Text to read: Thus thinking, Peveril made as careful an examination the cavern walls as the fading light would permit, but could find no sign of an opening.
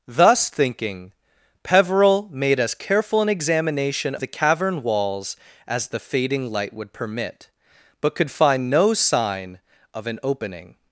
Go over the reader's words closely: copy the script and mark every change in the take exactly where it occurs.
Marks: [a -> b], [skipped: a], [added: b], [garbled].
Thus thinking, Peveril made as careful an examination the cavern walls as the fading light would permit, but could find no sign of an opening.